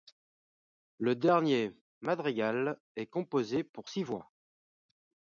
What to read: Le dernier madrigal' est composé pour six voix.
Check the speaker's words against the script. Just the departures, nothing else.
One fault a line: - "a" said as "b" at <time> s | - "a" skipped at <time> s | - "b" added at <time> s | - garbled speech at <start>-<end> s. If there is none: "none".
none